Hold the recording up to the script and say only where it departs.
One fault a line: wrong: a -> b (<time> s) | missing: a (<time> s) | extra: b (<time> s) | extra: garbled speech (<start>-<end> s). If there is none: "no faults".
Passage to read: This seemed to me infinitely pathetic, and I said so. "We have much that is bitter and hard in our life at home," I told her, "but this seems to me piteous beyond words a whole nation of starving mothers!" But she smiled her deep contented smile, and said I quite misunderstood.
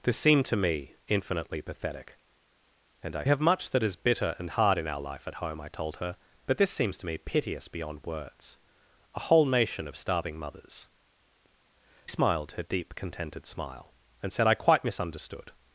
missing: said so We (3.2 s)
missing: But she (10.9 s)